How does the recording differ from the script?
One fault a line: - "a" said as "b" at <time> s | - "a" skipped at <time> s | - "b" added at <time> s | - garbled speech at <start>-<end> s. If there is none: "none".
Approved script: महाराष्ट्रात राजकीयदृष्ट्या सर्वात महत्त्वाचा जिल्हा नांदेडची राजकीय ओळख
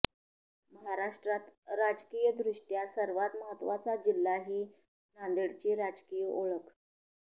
- "ही" added at 4.5 s